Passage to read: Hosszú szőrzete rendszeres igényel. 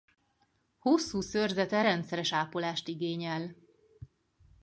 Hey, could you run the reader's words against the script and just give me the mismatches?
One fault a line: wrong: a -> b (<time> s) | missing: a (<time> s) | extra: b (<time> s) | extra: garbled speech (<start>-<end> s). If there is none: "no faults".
extra: ápolást (2.3 s)